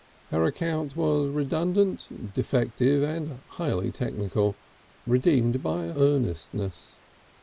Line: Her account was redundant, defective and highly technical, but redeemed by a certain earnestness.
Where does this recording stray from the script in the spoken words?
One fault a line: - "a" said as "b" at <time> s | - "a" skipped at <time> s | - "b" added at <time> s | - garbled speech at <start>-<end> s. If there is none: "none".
- "but" skipped at 4.6 s
- "certain" skipped at 6.0 s